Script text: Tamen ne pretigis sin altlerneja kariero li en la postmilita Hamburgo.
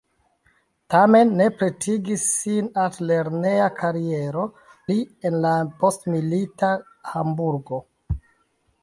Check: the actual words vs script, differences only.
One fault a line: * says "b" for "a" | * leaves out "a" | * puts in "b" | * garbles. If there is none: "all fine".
all fine